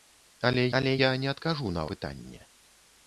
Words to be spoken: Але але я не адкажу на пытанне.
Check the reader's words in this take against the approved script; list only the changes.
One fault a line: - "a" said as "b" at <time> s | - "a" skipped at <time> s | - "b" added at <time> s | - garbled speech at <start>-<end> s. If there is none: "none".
none